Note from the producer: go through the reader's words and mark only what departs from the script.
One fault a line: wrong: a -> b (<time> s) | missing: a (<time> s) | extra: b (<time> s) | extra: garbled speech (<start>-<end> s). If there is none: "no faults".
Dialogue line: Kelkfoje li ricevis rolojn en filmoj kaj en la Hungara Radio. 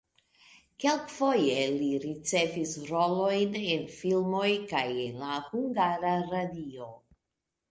no faults